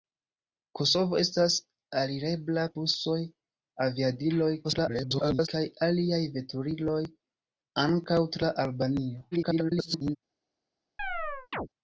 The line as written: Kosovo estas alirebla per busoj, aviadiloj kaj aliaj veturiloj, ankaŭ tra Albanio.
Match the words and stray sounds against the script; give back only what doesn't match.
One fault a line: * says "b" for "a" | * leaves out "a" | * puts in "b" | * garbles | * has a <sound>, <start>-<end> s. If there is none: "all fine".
* leaves out "per"
* garbles
* garbles
* has a chirp, 11.0-11.7 s